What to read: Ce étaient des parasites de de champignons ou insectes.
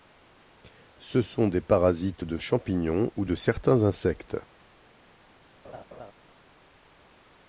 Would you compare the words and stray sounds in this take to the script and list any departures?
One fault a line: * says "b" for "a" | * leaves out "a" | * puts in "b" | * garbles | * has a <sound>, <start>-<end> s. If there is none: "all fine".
* says "sont" for "étaient"
* leaves out "de"
* puts in "de certains"
* has a laugh, 5.6-6.1 s